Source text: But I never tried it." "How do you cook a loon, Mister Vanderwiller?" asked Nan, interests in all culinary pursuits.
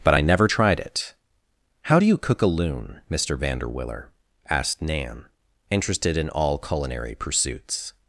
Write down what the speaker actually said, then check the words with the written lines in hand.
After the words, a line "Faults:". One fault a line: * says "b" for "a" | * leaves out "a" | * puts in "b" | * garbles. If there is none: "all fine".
But I never tried it." "How do you cook a loon, Mister Vanderwiller?" asked Nan, interested in all culinary pursuits.
Faults:
* says "interested" for "interests"